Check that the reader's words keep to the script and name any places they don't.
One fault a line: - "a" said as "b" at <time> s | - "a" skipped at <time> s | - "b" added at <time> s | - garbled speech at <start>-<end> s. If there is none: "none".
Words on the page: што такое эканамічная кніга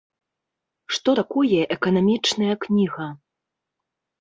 none